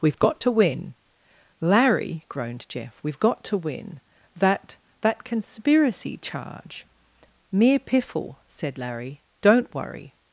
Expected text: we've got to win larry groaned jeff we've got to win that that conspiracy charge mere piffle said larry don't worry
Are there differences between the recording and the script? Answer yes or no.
no